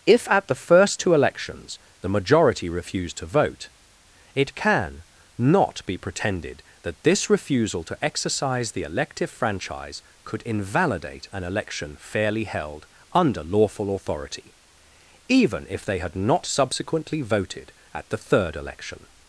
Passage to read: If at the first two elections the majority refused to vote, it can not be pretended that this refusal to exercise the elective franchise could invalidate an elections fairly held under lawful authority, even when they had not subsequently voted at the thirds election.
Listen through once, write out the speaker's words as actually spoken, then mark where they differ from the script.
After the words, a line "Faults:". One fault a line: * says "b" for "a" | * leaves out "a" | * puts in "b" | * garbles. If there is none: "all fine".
If at the first two elections the majority refused to vote, it can not be pretended that this refusal to exercise the elective franchise could invalidate an election fairly held under lawful authority, even if they had not subsequently voted at the third election.
Faults:
* says "election" for "elections"
* says "if" for "when"
* says "third" for "thirds"